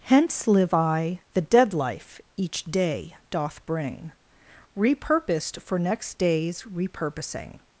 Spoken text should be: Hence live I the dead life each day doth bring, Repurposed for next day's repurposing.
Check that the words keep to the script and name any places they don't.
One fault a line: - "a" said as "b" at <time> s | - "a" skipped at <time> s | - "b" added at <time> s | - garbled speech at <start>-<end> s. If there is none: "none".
none